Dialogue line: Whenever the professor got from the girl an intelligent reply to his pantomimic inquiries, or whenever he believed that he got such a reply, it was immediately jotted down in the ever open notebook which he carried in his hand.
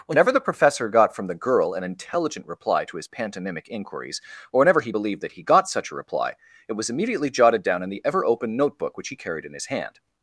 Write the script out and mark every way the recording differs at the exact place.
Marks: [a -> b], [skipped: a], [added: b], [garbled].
Whenever the professor got from the girl an intelligent reply to his pantomimic inquiries, or whenever he believed that he got such a reply, it was immediately jotted down in the ever open notebook which he carried in his hand.